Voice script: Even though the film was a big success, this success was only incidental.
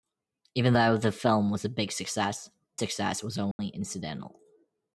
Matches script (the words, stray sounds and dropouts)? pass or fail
fail